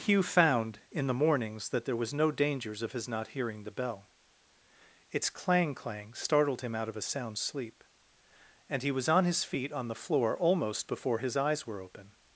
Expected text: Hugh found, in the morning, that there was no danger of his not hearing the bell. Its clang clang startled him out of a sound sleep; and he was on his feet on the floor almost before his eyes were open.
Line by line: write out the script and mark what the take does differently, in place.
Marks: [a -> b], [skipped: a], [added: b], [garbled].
Hugh found, in the [morning, -> mornings] that there was no [danger -> dangers] of his not hearing the bell. Its clang clang startled him out of a sound sleep; and he was on his feet on the floor almost before his eyes were open.